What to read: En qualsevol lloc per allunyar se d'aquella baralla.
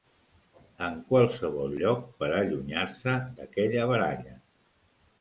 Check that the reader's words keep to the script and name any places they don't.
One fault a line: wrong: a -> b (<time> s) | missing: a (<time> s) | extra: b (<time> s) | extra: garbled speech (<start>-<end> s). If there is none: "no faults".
no faults